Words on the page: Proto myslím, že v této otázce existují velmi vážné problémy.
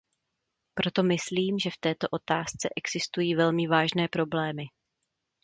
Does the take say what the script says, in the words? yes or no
yes